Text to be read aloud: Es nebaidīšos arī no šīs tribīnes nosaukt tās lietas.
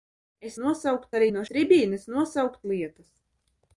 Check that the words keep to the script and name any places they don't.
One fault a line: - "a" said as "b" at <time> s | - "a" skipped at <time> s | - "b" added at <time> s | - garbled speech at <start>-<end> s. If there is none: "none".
- "nebaidīšos" said as "nosaukt" at 0.6 s
- "šīs" skipped at 1.4 s
- "tās" skipped at 2.6 s